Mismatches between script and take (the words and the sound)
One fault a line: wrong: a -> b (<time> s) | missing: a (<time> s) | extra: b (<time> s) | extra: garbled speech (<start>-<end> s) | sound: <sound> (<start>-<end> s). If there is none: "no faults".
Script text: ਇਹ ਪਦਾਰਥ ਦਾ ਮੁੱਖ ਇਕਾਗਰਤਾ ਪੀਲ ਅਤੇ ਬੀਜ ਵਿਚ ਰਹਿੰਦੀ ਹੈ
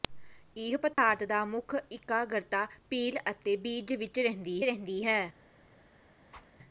sound: dropout (0.9-1.0 s)
extra: ਰਹਿੰਦੀ (4.6 s)
sound: whoosh (6.3-6.5 s)